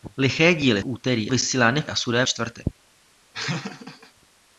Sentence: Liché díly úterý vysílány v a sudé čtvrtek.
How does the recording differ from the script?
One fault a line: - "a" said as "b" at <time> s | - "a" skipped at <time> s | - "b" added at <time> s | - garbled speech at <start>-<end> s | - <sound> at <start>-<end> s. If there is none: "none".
- laugh at 3.3-4.1 s